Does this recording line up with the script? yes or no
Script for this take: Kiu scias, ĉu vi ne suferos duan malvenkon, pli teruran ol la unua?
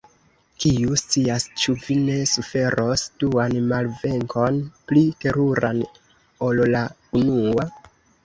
yes